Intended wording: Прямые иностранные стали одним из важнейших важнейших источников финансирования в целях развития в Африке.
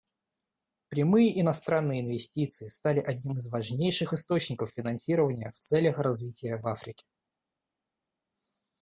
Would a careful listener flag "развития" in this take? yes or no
no